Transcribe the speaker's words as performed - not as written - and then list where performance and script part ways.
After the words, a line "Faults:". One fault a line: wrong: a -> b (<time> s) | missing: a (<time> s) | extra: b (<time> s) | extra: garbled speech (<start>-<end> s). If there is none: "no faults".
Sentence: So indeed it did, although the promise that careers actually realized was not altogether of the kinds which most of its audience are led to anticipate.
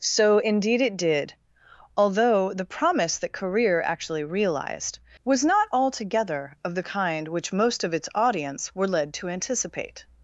So indeed it did, although the promise that career actually realized was not altogether of the kind which most of its audience were led to anticipate.
Faults:
wrong: careers -> career (3.3 s)
wrong: kinds -> kind (6.8 s)
wrong: are -> were (8.7 s)